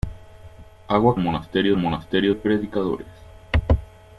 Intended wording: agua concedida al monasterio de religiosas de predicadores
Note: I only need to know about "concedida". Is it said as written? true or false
false